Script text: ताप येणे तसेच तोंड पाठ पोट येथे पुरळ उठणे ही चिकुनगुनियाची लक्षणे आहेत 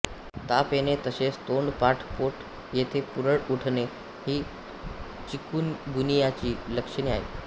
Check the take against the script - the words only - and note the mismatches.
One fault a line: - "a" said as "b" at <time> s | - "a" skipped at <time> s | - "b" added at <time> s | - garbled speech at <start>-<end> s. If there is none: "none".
none